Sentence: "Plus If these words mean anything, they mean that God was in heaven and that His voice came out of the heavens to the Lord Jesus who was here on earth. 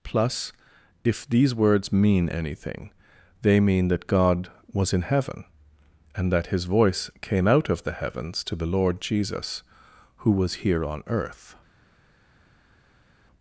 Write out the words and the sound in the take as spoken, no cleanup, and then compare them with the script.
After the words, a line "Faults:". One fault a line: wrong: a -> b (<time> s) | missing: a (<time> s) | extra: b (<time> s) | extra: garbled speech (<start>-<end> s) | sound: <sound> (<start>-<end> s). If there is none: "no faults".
"Plus If these words mean anything, they mean that God was in heaven and that His voice came out of the heavens to the Lord Jesus who was here on earth.
Faults:
no faults